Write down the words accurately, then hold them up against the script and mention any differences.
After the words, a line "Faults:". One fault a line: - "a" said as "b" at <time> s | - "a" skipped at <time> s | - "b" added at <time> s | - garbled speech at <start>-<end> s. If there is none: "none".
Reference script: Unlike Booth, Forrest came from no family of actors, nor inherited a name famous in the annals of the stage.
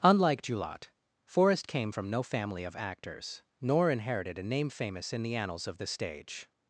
Unlike Julot, Forrest came from no family of actors, nor inherited a name famous in the annals of the stage.
Faults:
- "Booth" said as "Julot" at 0.4 s